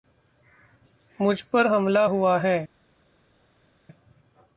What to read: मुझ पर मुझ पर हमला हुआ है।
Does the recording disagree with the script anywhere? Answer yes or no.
yes